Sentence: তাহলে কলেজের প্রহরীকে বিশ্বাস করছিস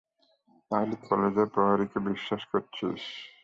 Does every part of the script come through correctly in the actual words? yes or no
yes